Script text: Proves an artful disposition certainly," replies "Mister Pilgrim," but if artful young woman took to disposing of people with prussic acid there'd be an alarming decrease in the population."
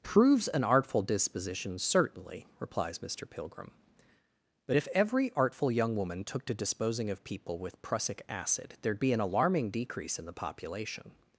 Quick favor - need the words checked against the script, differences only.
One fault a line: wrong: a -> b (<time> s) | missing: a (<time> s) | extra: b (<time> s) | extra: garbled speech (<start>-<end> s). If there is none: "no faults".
extra: every (4.9 s)